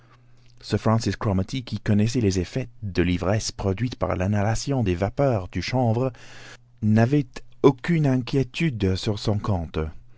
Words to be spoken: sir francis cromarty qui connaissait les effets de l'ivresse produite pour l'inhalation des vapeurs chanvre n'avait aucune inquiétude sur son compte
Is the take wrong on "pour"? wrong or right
wrong